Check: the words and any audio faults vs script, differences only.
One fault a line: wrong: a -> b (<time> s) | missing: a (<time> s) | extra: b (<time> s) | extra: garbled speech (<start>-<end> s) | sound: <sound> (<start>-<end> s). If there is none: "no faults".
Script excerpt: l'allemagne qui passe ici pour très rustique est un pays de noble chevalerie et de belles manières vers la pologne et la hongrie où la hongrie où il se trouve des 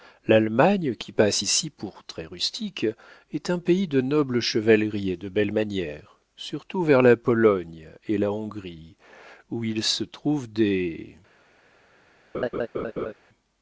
extra: surtout (6.4 s)
missing: la hongrie où (9.6 s)
sound: laugh (12.3-13.1 s)